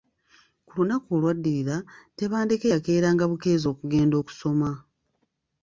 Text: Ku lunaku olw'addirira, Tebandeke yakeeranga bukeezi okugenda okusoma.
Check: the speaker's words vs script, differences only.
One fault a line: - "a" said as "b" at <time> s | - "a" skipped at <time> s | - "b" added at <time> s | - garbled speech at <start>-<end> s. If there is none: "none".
none